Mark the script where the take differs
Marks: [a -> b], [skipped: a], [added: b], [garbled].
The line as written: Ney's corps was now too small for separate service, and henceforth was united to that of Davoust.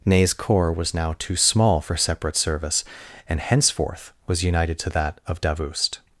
Ney's corps was now too small for separate service, and henceforth was united to that of Davoust.